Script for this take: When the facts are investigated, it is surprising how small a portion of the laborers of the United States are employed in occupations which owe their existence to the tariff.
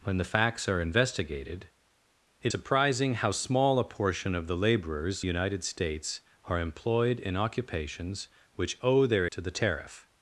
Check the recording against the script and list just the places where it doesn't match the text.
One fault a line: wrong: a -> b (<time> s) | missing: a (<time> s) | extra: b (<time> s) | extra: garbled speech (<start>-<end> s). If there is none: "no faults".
missing: is (2.5 s)
missing: of the (5.2 s)
missing: existence (9.3 s)